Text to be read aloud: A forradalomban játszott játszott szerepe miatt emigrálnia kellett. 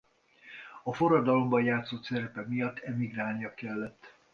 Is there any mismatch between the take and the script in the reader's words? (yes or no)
yes